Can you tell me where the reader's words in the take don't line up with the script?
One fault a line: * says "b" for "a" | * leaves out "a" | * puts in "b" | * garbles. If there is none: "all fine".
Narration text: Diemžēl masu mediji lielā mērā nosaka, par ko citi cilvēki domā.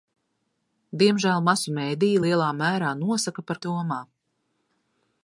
* leaves out "ko citi cilvēki"